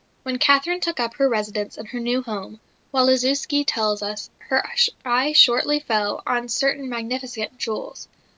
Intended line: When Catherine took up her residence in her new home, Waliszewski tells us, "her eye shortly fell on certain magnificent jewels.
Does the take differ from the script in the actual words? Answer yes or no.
no